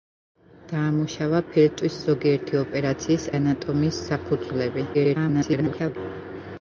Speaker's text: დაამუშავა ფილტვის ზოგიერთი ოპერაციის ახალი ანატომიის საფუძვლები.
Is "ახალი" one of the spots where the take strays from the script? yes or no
yes